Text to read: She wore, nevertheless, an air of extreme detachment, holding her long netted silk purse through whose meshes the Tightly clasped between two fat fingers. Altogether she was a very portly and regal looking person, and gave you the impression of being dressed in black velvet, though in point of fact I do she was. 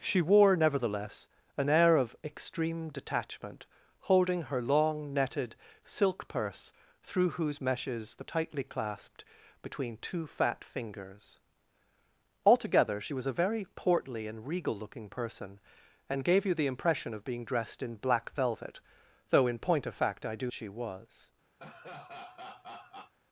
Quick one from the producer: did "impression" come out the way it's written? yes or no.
yes